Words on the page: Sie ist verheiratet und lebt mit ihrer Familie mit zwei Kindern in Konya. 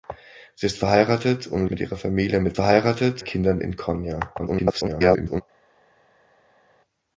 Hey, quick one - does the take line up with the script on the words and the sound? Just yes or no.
no